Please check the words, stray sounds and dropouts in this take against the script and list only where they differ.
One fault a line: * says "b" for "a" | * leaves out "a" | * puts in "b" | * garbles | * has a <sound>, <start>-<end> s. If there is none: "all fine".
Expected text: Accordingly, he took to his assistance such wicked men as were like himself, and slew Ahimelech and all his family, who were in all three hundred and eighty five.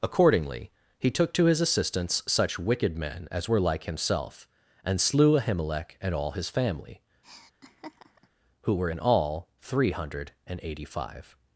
* has a laugh, 7.2-8.3 s